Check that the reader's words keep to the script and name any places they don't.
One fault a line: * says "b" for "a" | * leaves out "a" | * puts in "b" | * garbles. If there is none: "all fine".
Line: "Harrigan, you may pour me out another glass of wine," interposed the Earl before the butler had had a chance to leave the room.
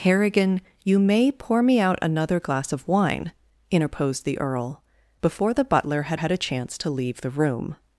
all fine